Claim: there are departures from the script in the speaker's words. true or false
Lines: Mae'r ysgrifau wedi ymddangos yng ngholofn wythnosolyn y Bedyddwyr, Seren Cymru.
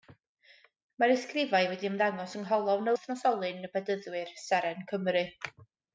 false